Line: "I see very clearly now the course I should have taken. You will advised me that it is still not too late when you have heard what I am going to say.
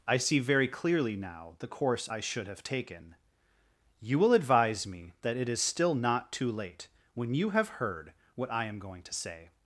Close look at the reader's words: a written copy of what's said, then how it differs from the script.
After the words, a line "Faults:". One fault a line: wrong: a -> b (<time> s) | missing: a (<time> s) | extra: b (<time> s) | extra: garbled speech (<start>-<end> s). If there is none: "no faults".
"I see very clearly now the course I should have taken. You will advise me that it is still not too late when you have heard what I am going to say.
Faults:
wrong: advised -> advise (4.3 s)